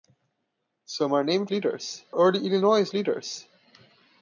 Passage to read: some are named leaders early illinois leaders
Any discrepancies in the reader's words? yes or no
no